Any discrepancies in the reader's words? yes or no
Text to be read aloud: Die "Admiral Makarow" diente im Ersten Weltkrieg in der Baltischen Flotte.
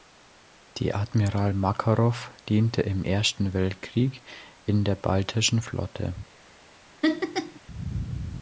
no